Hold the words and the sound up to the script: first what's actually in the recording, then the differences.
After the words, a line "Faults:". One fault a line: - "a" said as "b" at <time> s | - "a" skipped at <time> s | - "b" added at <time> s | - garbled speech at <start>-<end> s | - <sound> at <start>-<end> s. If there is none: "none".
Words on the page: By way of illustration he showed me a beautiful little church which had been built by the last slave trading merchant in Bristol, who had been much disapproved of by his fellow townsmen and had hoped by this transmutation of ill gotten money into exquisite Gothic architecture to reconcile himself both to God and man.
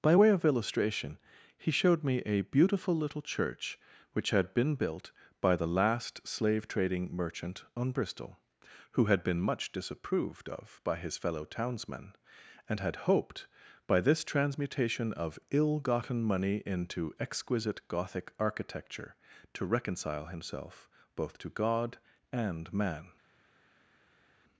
By way of illustration he showed me a beautiful little church which had been built by the last slave trading merchant on Bristol, who had been much disapproved of by his fellow townsmen and had hoped by this transmutation of ill gotten money into exquisite Gothic architecture to reconcile himself both to God and man.
Faults:
- "in" said as "on" at 7.7 s